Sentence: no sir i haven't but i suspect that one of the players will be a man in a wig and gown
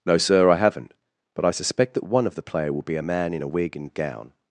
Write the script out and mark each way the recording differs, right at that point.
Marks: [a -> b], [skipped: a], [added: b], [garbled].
no sir i haven't but i suspect that one of the [players -> player] will be a man in a wig and gown